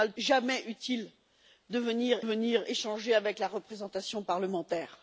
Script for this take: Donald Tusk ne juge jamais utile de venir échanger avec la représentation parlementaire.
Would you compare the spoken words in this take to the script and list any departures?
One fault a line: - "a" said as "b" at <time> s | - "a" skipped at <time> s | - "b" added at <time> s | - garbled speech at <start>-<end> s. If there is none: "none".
- "Tusk ne juge" skipped at 0.1 s
- "venir" added at 2.2 s